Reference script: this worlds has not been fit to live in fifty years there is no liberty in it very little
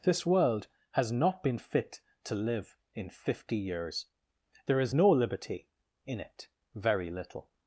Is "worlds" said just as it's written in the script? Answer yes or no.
no